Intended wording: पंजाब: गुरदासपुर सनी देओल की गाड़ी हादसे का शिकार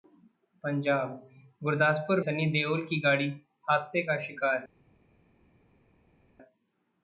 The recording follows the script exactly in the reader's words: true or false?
true